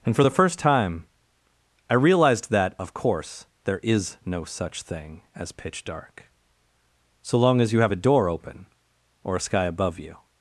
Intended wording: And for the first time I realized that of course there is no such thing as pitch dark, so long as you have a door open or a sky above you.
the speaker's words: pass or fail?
pass